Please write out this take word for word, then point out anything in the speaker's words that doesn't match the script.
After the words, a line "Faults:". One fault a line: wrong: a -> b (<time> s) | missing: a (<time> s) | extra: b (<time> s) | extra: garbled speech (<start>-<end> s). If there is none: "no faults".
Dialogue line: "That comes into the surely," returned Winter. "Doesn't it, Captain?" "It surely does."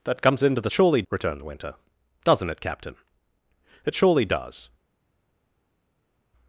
"That comes into the surely," returned Winter. "Doesn't it, Captain?" "It surely does."
Faults:
no faults